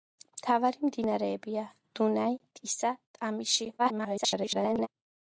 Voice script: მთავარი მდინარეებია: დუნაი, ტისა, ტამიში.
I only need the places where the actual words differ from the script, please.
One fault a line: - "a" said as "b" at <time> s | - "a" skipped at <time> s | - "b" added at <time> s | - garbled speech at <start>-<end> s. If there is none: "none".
- garbled speech at 3.8-4.9 s